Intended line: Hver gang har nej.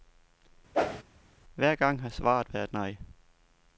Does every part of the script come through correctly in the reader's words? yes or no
no